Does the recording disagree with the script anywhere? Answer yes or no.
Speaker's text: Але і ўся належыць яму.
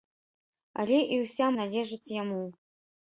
no